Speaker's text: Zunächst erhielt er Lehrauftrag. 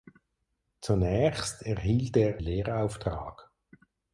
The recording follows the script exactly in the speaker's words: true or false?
true